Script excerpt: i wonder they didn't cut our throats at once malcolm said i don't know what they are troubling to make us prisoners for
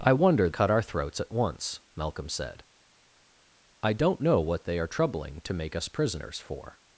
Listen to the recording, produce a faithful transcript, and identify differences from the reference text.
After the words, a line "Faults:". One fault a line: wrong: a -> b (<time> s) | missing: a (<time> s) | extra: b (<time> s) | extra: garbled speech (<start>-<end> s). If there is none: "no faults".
i wonder cut our throats at once malcolm said i don't know what they are troubling to make us prisoners for
Faults:
missing: they didn't (0.5 s)